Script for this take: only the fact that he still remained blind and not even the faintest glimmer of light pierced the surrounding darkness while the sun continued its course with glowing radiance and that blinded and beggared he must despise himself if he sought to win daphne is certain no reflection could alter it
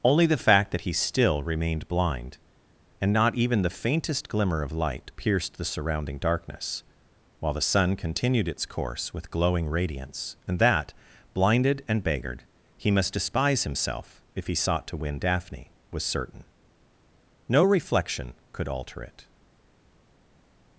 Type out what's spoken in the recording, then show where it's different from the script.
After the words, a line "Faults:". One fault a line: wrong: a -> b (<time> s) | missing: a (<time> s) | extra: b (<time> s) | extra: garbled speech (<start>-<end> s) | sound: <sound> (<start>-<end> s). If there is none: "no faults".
only the fact that he still remained blind and not even the faintest glimmer of light pierced the surrounding darkness while the sun continued its course with glowing radiance and that blinded and beggared he must despise himself if he sought to win daphne was certain no reflection could alter it
Faults:
wrong: is -> was (15.9 s)